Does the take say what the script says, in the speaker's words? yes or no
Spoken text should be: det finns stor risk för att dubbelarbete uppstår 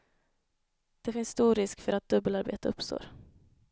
yes